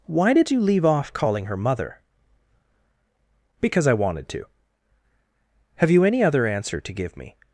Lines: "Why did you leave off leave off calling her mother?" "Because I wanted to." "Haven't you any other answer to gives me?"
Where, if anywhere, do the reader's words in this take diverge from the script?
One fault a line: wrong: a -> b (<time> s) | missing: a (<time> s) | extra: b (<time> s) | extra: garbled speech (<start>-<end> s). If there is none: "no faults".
missing: leave off (1.1 s)
wrong: Haven't -> Have (5.8 s)
wrong: gives -> give (6.9 s)